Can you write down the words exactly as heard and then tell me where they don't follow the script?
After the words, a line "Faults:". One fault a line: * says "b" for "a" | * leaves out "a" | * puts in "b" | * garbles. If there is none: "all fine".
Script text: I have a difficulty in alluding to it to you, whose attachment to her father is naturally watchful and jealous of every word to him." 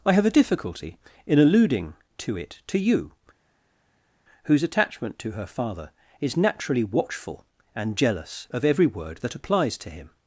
I have a difficulty in alluding to it to you, whose attachment to her father is naturally watchful and jealous of every word that applies to him."
Faults:
* puts in "that applies"